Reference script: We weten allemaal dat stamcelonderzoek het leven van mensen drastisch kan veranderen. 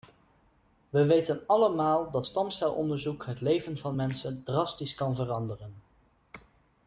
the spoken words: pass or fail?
pass